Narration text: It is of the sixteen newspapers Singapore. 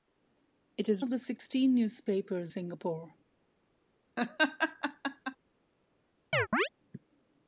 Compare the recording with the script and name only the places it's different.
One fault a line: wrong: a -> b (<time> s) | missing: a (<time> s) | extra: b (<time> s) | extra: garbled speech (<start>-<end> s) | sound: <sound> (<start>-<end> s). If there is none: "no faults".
sound: laugh (4.2-5.4 s)
sound: chirp (6.3-6.7 s)